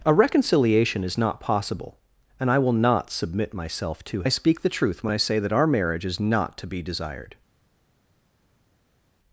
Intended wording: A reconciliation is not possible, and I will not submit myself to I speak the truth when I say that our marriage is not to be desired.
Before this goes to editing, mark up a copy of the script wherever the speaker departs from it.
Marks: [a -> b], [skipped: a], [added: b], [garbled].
A reconciliation is not possible, and I will not submit myself to I speak the truth when I say that our marriage is not to be desired.